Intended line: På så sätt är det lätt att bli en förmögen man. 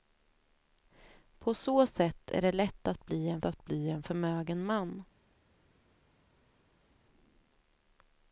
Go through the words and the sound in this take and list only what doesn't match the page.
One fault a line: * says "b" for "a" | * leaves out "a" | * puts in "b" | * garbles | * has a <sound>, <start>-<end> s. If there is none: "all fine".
* puts in "att bli en"